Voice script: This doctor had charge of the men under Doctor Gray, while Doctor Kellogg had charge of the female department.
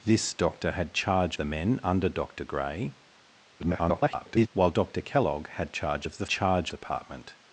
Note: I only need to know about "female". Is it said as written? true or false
false